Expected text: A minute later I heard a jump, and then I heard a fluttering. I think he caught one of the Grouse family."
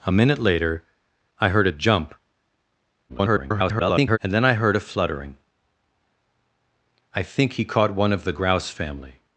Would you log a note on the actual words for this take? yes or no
yes